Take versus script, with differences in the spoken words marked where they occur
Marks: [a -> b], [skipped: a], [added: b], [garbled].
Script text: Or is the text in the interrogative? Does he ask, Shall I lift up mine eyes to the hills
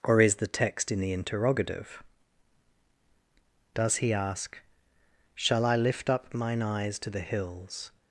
Or is the text in the interrogative? Does he ask, Shall I lift up mine eyes to the hills